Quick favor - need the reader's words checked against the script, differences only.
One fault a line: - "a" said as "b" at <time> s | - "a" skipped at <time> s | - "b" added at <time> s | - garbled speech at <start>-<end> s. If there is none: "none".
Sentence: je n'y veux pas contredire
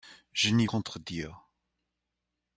- "veux pas" skipped at 0.7 s